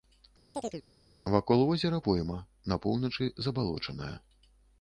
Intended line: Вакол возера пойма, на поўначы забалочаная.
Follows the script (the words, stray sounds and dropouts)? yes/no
no